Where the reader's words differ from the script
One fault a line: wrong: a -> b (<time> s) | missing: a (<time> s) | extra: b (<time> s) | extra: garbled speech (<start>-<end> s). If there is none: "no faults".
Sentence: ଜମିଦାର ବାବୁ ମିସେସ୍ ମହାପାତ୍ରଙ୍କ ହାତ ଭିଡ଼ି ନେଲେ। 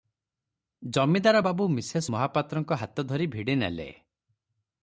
extra: ଧରି (3.1 s)